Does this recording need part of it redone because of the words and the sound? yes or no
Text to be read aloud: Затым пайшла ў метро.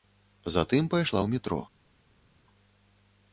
no